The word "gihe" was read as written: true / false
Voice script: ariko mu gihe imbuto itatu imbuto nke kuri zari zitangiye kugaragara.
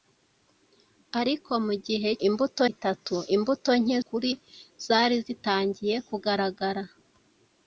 true